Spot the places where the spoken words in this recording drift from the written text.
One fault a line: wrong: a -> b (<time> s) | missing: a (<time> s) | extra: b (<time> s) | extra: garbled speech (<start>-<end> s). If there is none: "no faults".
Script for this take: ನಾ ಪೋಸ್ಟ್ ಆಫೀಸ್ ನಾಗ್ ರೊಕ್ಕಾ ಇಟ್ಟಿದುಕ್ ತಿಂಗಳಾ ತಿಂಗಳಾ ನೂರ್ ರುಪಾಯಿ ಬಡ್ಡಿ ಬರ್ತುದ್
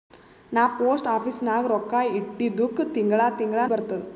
missing: ನೂರ್ ರುಪಾಯಿ ಬಡ್ಡಿ (3.7 s)